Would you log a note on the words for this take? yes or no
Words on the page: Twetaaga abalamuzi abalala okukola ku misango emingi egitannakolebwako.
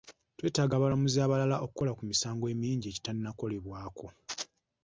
no